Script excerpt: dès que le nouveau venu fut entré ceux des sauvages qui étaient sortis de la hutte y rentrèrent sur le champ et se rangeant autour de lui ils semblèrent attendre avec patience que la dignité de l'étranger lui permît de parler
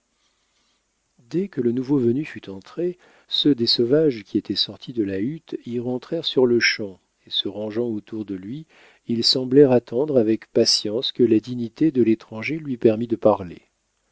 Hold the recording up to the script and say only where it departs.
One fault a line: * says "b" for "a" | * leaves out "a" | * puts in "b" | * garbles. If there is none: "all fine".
all fine